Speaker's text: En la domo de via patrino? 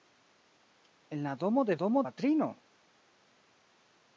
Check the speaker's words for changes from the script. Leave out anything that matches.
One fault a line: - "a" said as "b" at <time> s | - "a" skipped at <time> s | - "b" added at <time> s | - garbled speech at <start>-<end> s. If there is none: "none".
- "via" said as "domo" at 1.7 s